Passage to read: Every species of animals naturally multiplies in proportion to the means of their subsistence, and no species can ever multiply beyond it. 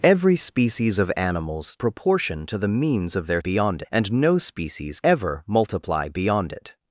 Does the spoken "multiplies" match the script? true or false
false